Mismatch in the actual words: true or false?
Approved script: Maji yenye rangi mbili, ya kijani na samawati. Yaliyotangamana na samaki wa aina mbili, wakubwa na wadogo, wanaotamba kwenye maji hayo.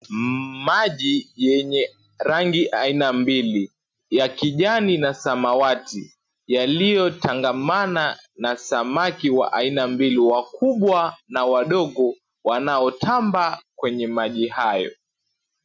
true